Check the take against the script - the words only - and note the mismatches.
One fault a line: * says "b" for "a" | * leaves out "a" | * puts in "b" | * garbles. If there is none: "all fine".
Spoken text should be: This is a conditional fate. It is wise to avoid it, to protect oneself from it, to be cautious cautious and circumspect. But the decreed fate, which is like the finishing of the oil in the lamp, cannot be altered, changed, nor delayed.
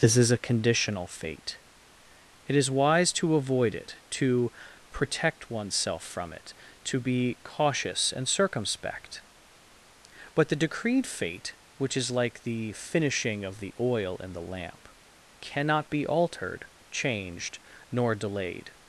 * leaves out "cautious"